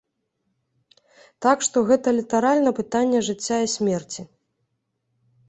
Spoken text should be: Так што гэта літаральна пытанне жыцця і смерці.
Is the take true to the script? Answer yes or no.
yes